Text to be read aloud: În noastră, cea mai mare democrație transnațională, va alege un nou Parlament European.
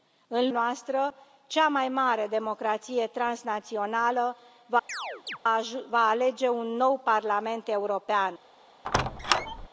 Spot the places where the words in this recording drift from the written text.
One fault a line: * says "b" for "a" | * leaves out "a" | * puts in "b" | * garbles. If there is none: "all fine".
all fine